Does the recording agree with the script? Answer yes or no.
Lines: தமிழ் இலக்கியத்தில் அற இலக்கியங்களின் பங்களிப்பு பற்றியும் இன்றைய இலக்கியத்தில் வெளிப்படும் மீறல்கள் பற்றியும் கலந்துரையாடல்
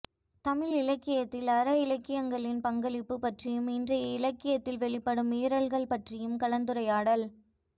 yes